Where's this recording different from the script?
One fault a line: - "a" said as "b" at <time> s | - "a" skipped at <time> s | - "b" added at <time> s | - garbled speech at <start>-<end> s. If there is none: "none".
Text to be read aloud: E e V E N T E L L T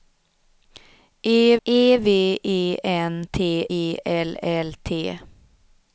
none